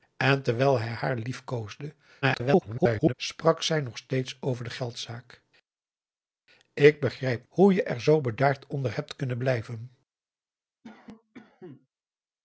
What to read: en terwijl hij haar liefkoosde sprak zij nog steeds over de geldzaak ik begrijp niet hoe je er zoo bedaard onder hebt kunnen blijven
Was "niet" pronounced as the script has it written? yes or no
no